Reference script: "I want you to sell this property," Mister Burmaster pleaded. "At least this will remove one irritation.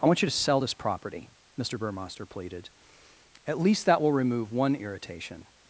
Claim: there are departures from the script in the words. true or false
true